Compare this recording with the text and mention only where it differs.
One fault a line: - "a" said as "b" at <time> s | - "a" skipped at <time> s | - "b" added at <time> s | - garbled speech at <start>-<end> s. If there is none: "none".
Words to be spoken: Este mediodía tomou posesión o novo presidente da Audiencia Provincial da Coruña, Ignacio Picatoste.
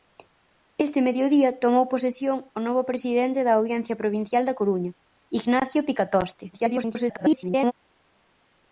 - garbled speech at 6.5-7.7 s